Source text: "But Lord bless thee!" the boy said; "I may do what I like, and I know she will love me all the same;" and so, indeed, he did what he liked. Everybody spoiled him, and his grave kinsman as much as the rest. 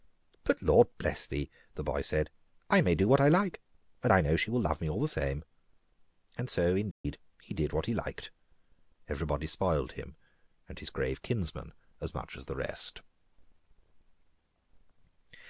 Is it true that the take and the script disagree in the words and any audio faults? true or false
true